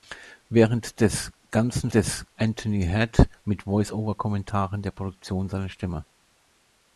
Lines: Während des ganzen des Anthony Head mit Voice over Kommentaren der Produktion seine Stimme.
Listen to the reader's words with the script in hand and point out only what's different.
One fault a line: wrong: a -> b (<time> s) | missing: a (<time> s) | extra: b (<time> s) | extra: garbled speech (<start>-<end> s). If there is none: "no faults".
no faults